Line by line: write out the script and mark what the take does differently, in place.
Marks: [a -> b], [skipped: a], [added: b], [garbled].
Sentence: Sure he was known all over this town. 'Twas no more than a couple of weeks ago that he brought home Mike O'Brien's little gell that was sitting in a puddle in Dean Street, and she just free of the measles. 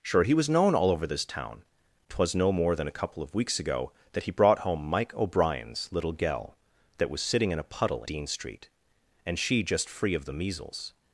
Sure he was known all over this town. 'Twas no more than a couple of weeks ago that he brought home Mike O'Brien's little gell that was sitting in a puddle [skipped: in] Dean Street, and she just free of the measles.